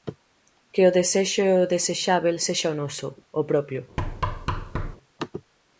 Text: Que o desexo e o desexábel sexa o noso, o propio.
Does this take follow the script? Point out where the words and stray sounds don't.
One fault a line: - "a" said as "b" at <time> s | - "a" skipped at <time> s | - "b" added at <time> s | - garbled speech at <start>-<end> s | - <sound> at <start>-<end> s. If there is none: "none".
- thud at 4.0-5.0 s